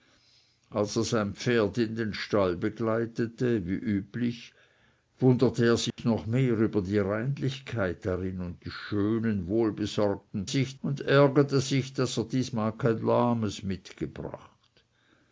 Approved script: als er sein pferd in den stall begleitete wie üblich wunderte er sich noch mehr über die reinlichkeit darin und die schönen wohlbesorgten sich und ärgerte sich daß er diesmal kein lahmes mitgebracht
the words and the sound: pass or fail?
fail